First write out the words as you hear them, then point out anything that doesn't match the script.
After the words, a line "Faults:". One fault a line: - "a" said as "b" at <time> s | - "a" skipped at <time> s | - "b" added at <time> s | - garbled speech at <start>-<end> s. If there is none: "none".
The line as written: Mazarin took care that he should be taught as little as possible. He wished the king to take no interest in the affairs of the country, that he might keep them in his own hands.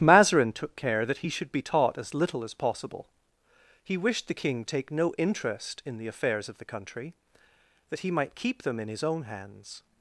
Mazarin took care that he should be taught as little as possible. He wished the king take no interest in the affairs of the country, that he might keep them in his own hands.
Faults:
- "to" skipped at 4.6 s